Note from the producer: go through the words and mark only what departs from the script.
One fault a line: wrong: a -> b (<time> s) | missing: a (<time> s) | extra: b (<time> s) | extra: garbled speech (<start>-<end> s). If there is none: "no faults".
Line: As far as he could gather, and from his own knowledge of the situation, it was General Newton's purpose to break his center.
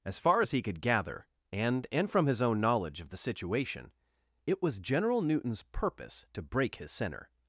extra: and (1.9 s)